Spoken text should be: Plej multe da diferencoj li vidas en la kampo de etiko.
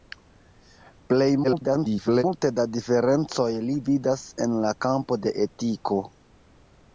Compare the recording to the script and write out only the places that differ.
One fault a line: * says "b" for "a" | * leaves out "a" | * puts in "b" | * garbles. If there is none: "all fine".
* garbles